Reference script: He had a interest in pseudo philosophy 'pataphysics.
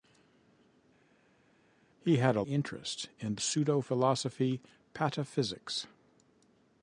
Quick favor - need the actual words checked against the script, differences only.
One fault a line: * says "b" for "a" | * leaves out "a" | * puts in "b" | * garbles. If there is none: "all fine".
all fine